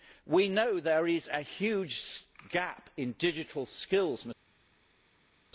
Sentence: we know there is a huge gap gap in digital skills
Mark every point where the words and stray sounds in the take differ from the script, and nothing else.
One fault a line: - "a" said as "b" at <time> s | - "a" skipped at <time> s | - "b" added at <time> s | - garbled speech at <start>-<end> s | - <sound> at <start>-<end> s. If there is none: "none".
- "gap" skipped at 2.9 s